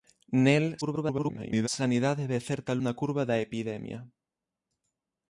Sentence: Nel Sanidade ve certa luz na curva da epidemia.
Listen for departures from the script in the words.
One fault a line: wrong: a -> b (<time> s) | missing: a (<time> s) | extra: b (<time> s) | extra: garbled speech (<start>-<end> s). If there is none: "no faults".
extra: garbled speech (0.8-1.7 s)
missing: luz (2.7 s)